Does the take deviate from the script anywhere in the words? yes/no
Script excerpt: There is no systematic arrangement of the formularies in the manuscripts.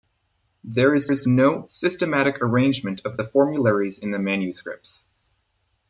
yes